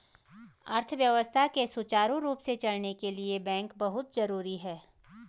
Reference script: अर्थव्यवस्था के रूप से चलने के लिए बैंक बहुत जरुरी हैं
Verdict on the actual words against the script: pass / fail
fail